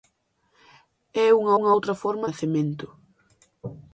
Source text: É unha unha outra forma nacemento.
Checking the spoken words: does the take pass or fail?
pass